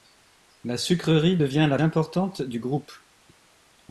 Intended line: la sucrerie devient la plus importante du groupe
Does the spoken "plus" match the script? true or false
false